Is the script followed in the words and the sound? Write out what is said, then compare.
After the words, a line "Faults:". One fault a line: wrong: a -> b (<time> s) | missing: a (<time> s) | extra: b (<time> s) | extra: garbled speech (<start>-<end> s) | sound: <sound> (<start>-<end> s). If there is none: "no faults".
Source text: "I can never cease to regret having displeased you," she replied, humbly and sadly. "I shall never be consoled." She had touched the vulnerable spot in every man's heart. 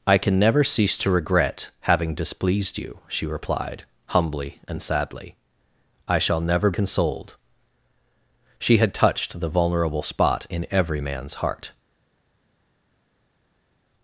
"I can never cease to regret having displeased you," she replied, humbly and sadly. "I shall never consoled." She had touched the vulnerable spot in every man's heart.
Faults:
missing: be (6.7 s)